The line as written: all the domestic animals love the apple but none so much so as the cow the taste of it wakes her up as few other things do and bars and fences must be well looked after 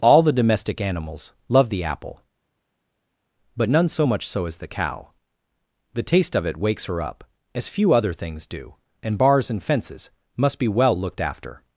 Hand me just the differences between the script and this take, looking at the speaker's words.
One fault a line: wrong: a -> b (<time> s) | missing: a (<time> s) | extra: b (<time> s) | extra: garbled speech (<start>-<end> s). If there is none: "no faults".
no faults